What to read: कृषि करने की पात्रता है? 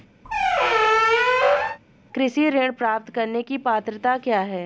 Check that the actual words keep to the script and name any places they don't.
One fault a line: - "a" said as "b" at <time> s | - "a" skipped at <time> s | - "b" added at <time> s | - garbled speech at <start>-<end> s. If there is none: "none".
- "ऋण प्राप्त" added at 2.5 s
- "क्या" added at 4.2 s